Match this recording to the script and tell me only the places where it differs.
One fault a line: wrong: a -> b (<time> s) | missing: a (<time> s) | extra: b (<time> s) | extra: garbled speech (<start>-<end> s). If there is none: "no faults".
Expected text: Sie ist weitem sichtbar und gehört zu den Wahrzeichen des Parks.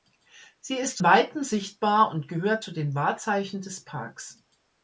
no faults